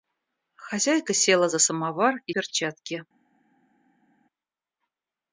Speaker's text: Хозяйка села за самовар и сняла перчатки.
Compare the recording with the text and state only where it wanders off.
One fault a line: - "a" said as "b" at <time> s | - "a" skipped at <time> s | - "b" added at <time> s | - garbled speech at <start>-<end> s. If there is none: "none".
- "сняла" skipped at 2.3 s